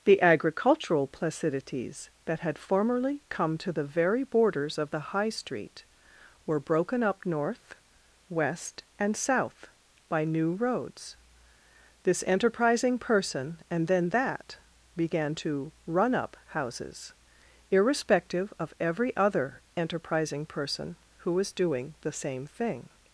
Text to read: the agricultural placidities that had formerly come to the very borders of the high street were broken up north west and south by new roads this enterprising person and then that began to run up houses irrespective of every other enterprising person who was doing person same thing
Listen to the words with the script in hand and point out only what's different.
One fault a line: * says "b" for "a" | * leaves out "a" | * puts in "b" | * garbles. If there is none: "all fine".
* says "the" for "person"